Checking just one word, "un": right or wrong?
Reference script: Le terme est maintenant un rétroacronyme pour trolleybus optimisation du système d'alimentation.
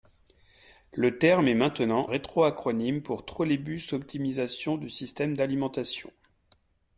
wrong